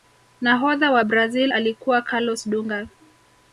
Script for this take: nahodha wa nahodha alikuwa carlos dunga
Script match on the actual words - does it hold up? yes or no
no